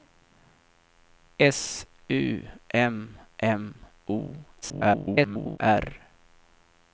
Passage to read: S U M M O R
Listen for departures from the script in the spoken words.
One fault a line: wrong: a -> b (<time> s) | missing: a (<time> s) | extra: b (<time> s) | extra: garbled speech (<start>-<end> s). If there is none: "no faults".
extra: garbled speech (4.6-5.6 s)